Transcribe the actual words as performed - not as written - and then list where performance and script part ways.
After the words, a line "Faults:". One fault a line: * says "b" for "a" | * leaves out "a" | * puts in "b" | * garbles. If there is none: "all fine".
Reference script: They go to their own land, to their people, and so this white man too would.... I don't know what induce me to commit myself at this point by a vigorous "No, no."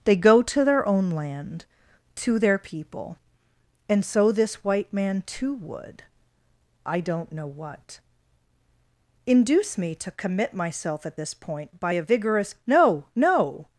They go to their own land, to their people, and so this white man too would.... I don't know what induce me to commit myself at this point by a vigorous "No, no."
Faults:
all fine